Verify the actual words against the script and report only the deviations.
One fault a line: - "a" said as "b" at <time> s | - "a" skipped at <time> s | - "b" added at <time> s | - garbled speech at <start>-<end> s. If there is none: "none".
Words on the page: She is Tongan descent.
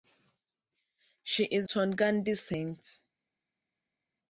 none